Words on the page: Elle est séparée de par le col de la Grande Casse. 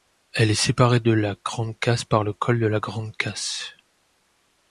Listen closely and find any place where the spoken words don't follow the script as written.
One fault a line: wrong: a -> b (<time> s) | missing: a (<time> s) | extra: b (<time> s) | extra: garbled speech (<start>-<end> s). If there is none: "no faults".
extra: la Grande Casse (1.1 s)